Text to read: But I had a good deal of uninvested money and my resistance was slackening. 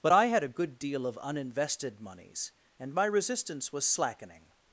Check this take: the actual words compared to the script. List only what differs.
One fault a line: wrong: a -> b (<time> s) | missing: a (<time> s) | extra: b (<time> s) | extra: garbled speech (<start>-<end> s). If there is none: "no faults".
wrong: money -> moneys (2.0 s)